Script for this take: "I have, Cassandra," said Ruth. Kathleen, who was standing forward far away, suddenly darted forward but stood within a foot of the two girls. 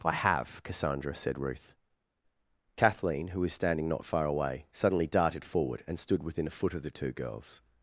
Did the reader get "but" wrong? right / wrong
wrong